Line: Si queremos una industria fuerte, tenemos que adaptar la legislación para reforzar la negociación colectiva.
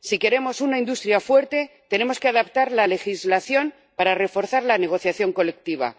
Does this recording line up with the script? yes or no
yes